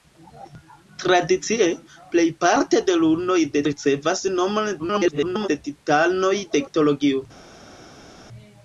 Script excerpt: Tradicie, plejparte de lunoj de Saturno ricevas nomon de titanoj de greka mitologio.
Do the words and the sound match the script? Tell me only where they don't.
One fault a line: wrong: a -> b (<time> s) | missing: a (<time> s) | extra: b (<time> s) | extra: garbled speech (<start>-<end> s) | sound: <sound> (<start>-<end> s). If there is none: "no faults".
missing: Saturno (3.6 s)
extra: garbled speech (4.8-5.5 s)
missing: greka (6.6 s)